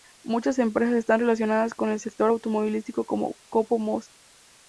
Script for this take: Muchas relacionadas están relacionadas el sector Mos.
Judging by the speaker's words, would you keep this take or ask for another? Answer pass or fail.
fail